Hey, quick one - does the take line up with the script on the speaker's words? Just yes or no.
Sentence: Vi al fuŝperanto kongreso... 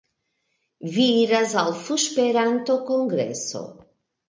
no